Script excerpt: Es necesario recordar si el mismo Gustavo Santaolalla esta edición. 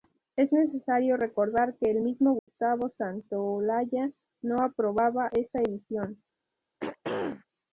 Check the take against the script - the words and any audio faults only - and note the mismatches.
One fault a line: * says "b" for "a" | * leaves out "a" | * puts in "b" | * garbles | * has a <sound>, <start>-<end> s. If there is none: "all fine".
* says "que" for "si"
* has a dropout, 2.4-2.5 s
* puts in "no aprobaba"
* has a throat clearing, 6.8-7.5 s